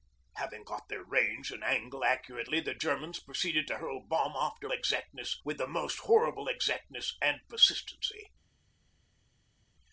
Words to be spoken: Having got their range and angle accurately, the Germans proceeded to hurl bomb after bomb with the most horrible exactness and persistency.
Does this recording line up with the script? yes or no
no